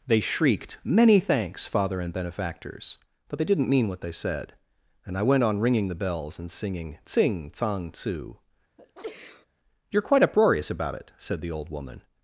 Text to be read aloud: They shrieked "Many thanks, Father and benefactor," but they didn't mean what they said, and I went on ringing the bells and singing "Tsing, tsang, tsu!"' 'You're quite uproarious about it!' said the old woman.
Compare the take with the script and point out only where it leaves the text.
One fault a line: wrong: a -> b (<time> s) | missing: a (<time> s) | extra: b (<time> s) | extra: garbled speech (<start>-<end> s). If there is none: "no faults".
wrong: benefactor -> benefactors (2.1 s)